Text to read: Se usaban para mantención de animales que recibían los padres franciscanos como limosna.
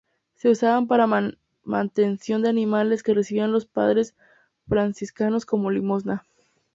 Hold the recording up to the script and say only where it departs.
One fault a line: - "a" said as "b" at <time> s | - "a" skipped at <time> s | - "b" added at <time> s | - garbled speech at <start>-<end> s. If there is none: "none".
none